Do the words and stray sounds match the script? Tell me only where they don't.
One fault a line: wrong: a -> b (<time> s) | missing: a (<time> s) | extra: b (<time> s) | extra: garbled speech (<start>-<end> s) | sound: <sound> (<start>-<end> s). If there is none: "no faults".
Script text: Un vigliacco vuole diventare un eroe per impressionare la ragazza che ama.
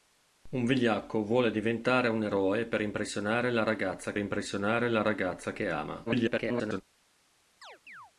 extra: impressionare la ragazza (4.2 s)
extra: garbled speech (6.1-6.8 s)
sound: chirp (7.6-8.1 s)